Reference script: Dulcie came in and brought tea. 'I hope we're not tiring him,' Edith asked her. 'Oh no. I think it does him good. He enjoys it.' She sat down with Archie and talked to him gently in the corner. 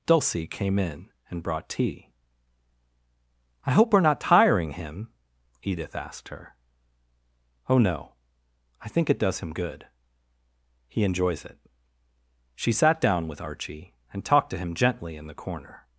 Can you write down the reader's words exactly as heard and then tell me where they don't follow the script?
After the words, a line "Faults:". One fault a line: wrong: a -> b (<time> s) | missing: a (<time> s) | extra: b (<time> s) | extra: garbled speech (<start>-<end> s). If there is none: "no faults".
Dulcie came in and brought tea. 'I hope we're not tiring him,' Edith asked her. 'Oh no. I think it does him good. He enjoys it.' She sat down with Archie and talked to him gently in the corner.
Faults:
no faults